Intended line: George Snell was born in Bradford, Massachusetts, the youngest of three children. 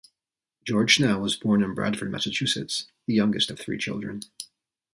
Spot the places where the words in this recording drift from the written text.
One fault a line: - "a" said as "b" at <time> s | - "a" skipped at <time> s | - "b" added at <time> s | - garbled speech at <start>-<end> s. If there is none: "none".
none